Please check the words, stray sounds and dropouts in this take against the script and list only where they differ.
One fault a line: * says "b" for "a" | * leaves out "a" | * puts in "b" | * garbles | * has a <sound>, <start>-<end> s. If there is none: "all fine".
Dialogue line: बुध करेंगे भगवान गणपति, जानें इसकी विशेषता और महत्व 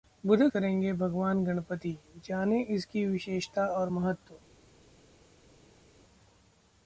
all fine